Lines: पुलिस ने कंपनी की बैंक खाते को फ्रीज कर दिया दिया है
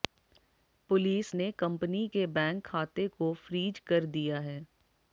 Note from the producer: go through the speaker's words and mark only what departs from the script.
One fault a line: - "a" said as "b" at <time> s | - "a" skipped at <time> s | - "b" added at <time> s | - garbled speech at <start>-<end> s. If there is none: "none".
- "की" said as "के" at 2.1 s
- "दिया" skipped at 4.4 s